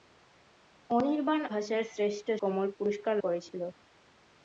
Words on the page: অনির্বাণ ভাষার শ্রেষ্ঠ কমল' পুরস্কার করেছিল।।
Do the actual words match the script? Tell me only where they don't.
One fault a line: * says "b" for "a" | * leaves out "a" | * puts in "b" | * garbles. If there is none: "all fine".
all fine